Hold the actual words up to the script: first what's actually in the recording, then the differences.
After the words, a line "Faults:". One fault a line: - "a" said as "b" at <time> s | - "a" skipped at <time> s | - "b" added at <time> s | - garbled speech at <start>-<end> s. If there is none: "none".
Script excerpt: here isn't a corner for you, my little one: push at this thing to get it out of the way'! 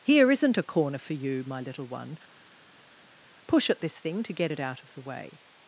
here isn't a corner for you, my little one: push at this thing to get it out of the way'!
Faults:
none